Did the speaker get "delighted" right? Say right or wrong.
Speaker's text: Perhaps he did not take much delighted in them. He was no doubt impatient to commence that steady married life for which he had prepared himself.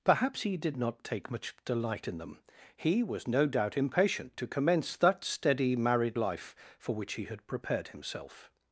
wrong